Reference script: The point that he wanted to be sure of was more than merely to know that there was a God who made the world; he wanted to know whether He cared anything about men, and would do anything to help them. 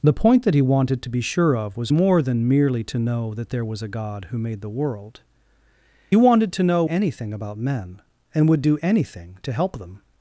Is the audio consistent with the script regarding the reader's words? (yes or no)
no